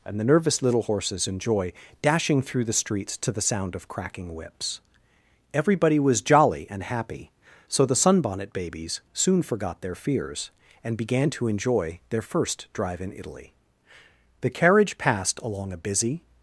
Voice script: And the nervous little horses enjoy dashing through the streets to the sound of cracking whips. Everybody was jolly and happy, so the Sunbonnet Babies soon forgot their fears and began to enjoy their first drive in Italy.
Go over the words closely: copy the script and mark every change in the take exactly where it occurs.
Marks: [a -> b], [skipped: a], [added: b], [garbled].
And the nervous little horses enjoy dashing through the streets to the sound of cracking whips. Everybody was jolly and happy, so the Sunbonnet Babies soon forgot their fears and began to enjoy their first drive in Italy. [added: The carriage passed along a busy]